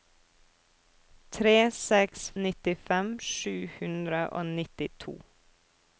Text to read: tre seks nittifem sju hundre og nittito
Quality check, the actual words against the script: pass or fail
pass